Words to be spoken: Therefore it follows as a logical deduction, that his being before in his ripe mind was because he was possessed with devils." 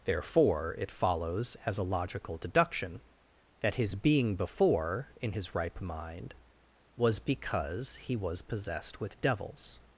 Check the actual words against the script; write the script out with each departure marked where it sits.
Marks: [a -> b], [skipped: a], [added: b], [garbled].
Therefore it follows as a logical deduction, that his being before in his ripe mind was because he was possessed with devils."